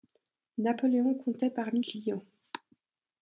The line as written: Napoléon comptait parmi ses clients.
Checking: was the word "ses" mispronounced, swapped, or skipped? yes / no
yes